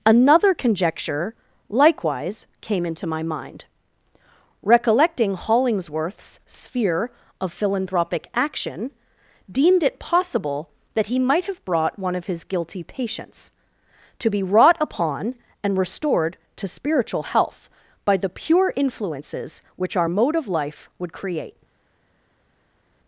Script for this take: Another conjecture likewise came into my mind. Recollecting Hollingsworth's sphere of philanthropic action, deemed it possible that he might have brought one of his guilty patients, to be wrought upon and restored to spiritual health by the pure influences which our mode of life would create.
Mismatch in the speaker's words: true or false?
false